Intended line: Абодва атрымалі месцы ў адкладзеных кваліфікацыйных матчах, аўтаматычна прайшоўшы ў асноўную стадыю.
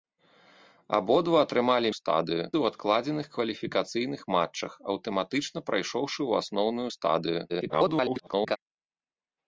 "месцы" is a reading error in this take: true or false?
true